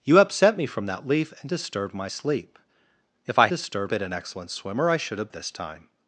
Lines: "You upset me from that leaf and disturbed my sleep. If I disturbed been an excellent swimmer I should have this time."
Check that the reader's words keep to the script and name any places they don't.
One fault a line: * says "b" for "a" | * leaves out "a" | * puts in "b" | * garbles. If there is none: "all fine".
all fine